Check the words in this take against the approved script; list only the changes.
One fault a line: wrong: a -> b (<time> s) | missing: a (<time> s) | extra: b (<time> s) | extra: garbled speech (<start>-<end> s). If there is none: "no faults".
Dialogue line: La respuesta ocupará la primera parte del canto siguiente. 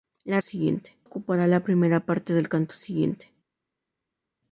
wrong: respuesta -> siguiente (0.4 s)